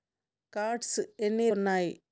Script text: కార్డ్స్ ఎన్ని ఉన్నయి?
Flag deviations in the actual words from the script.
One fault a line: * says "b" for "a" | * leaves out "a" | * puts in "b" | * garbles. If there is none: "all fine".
all fine